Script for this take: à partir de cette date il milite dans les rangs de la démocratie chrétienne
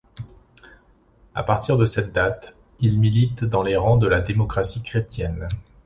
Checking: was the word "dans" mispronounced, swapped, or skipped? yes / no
no